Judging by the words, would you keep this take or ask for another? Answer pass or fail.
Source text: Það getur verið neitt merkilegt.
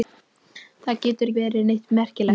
pass